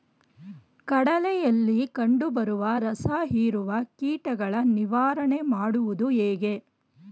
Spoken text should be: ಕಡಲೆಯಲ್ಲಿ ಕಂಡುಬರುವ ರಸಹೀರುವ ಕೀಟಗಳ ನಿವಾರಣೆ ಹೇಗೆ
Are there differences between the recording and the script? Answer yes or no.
yes